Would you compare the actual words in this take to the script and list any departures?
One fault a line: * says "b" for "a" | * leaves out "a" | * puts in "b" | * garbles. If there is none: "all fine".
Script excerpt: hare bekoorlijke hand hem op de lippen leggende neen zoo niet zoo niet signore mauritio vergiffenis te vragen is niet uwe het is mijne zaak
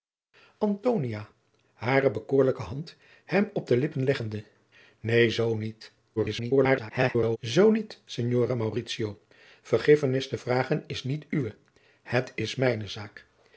* garbles